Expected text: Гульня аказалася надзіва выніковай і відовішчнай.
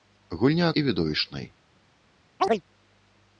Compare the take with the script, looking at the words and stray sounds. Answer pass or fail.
fail